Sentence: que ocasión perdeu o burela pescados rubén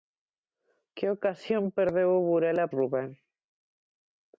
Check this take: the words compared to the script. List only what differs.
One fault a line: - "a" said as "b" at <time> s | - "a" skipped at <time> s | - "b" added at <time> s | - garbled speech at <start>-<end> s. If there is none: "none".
- "pescados" skipped at 2.6 s